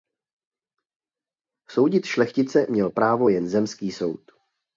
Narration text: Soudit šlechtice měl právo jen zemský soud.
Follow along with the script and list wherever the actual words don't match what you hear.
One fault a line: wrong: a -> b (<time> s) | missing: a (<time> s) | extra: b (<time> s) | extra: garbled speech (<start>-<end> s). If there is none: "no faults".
no faults